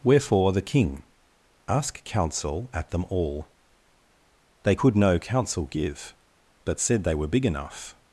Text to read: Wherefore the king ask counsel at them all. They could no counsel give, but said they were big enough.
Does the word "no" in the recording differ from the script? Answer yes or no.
no